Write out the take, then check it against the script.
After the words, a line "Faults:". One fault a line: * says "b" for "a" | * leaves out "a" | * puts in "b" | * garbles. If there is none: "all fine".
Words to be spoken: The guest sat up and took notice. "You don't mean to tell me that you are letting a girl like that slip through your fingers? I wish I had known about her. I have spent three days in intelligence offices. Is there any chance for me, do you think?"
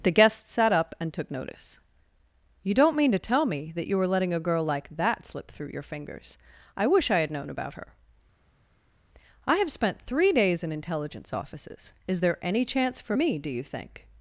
The guest sat up and took notice. "You don't mean to tell me that you were letting a girl like that slip through your fingers? I wish I had known about her. I have spent three days in intelligence offices. Is there any chance for me, do you think?"
Faults:
* says "were" for "are"